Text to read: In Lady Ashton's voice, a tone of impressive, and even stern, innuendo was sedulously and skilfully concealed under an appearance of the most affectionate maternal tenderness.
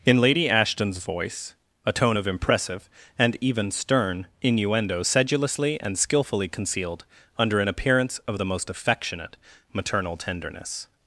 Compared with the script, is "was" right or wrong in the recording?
wrong